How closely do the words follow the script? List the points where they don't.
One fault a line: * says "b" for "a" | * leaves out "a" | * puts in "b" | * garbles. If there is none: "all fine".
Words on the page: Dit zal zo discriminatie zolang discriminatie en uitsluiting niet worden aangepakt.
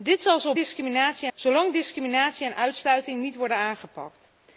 all fine